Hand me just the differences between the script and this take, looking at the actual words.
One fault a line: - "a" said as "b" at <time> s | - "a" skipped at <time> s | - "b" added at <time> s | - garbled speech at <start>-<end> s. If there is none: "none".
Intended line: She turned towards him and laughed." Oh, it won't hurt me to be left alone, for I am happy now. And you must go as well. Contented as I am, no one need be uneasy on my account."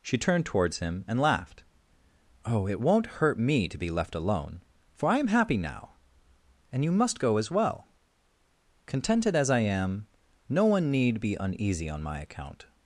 none